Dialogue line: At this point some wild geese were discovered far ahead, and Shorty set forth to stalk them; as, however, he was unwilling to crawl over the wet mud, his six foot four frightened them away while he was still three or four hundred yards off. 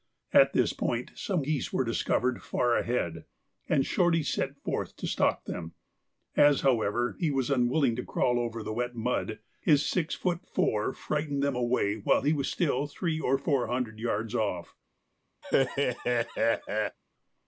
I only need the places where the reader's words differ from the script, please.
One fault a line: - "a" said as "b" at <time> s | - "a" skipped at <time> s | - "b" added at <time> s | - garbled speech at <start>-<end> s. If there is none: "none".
- "wild" skipped at 1.5 s